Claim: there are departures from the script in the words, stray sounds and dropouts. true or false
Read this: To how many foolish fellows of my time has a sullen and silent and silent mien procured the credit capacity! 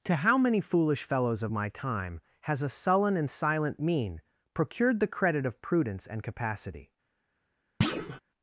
true